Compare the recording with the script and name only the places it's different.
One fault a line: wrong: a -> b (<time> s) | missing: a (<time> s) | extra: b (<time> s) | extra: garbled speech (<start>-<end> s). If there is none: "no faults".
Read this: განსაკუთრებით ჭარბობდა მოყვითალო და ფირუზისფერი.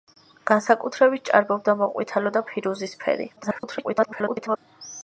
extra: garbled speech (3.4-4.6 s)